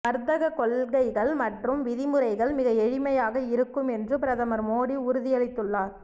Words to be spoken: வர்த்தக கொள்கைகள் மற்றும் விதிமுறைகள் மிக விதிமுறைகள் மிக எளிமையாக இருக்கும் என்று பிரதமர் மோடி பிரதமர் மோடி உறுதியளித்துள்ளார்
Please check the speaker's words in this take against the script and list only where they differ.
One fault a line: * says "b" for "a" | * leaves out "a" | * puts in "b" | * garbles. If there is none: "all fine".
* leaves out "விதிமுறைகள் மிக"
* leaves out "பிரதமர் மோடி"